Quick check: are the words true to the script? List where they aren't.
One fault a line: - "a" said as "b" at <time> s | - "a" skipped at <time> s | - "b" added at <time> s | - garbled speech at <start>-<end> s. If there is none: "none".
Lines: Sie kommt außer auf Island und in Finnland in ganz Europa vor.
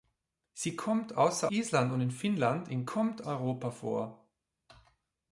- "auf" skipped at 1.5 s
- "ganz" said as "kommt" at 2.8 s